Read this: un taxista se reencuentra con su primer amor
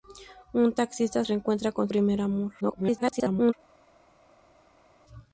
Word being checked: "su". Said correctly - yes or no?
no